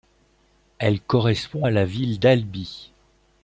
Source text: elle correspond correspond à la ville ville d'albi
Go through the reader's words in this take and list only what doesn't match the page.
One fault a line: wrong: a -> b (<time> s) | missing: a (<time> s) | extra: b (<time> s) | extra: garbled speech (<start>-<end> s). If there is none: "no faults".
missing: correspond (1.7 s)
missing: ville (2.2 s)